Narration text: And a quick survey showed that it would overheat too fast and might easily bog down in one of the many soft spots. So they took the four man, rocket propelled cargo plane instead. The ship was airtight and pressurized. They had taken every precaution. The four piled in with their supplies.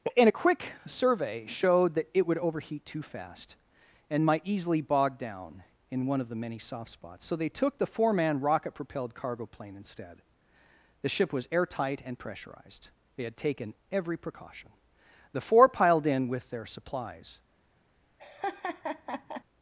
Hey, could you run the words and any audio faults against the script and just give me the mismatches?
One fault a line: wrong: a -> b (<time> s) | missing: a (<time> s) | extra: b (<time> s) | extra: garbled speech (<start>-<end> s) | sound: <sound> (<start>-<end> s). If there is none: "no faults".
sound: laugh (18.2-19.4 s)